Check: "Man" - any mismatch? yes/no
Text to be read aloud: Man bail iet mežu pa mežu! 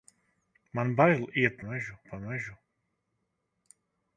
no